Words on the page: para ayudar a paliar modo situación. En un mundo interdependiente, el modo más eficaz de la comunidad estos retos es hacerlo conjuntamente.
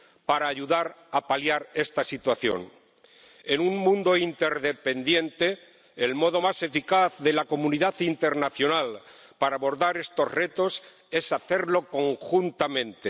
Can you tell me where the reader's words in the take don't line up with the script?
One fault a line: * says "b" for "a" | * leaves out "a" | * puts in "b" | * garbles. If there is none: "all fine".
* says "esta" for "modo"
* puts in "internacional para abordar"